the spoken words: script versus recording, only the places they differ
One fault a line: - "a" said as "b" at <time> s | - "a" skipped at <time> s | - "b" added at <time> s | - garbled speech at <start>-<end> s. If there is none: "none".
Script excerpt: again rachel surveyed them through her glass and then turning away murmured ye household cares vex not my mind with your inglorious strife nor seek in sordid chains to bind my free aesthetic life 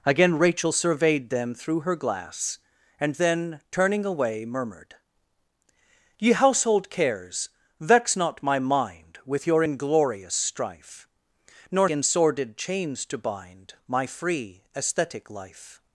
- "seek" skipped at 11.9 s